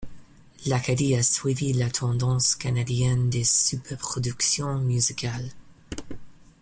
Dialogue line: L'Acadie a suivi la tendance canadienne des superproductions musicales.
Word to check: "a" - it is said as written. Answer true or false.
true